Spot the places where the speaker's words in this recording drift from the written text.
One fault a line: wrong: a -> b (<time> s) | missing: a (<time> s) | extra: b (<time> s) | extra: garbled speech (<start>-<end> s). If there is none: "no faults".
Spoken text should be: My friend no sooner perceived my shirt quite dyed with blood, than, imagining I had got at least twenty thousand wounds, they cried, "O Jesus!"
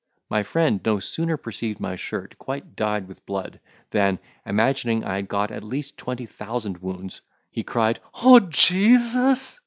wrong: they -> he (7.5 s)